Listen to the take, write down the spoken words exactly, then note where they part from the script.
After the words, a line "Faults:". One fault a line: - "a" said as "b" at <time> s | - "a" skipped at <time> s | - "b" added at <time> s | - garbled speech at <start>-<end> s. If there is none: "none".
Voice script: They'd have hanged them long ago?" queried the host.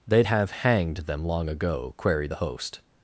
They'd have hanged them long ago?" queried the host.
Faults:
none